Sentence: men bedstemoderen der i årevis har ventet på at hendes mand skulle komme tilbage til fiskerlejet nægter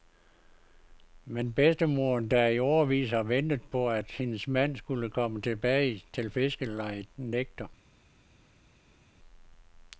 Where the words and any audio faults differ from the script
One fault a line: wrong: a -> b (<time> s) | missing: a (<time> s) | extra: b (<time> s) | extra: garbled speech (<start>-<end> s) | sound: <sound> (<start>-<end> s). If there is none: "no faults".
no faults